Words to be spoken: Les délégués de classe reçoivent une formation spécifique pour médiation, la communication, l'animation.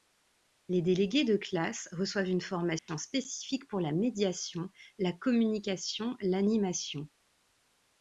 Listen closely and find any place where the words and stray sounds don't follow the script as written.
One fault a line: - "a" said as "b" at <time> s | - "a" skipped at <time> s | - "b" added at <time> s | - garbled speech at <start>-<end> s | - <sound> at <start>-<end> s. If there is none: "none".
- dropout at 2.8-2.9 s
- "la" added at 3.8 s